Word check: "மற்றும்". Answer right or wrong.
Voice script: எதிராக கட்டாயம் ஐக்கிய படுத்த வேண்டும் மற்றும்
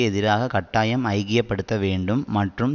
right